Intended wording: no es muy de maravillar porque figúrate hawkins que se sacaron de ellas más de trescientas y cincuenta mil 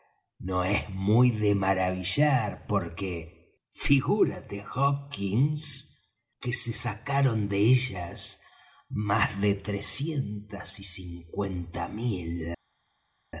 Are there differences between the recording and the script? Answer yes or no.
no